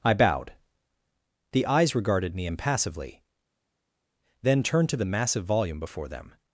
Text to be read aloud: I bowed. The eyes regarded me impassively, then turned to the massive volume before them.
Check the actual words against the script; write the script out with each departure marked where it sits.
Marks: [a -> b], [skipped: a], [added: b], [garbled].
I bowed. The eyes regarded me impassively, then turned to the massive volume before them.